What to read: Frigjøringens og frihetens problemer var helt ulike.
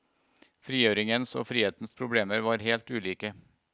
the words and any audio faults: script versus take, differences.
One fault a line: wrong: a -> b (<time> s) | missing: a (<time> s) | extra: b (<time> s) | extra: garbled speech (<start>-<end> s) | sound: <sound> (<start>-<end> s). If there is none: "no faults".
no faults